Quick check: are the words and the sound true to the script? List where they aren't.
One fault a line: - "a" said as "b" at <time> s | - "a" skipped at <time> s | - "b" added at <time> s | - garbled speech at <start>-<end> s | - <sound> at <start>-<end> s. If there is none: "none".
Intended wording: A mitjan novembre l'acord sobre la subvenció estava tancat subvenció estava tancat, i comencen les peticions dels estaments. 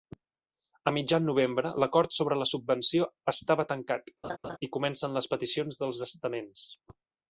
- "subvenció estava tancat" skipped at 4.1 s
- laugh at 4.2-4.6 s